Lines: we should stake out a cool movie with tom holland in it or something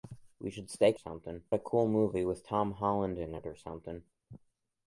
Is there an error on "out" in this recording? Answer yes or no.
yes